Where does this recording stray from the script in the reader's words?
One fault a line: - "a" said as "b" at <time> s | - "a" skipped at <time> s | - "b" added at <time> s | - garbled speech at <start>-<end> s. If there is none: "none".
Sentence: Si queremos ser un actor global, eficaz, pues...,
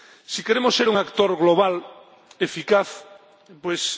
none